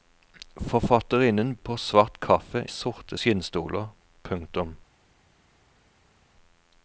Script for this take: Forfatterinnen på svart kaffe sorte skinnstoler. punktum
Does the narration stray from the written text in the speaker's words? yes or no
no